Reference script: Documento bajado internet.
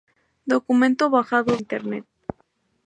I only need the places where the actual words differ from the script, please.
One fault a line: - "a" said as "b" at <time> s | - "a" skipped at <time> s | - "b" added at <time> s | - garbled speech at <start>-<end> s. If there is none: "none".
none